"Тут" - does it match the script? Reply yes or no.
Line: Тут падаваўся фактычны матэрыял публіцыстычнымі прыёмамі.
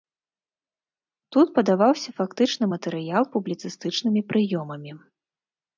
yes